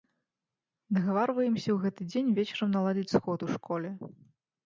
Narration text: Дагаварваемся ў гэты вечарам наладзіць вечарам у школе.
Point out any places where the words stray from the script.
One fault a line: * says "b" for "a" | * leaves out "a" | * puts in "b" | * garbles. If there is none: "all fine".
* puts in "дзень"
* says "сход" for "вечарам"